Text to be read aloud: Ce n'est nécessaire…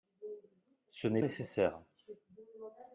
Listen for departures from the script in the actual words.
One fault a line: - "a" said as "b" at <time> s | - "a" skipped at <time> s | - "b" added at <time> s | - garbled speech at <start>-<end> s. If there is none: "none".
none